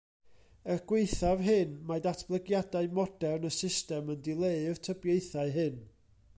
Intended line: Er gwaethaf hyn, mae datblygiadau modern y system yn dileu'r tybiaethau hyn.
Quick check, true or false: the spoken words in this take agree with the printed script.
true